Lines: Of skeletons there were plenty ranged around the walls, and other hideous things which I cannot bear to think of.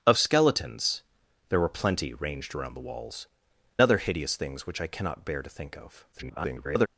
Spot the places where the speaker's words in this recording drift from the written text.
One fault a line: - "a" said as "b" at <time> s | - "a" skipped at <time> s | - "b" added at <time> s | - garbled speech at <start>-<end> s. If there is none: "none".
- "and" skipped at 3.3 s
- garbled speech at 6.1-6.9 s